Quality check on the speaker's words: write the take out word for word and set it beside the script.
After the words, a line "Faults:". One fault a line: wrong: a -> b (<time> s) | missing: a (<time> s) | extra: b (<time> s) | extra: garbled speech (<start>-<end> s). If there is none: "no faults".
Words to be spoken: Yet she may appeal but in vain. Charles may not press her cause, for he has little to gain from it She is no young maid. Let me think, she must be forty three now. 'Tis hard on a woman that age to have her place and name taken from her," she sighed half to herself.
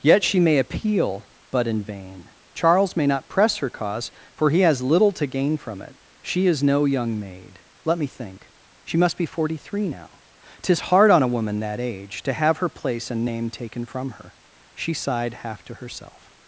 Yet she may appeal but in vain. Charles may not press her cause, for he has little to gain from it She is no young maid. Let me think, she must be forty three now. 'Tis hard on a woman that age to have her place and name taken from her," she sighed half to herself.
Faults:
no faults